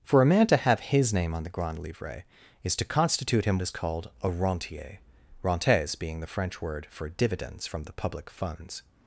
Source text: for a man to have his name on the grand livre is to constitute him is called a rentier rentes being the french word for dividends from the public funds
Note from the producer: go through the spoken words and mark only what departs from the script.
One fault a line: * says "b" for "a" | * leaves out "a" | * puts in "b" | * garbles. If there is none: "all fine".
all fine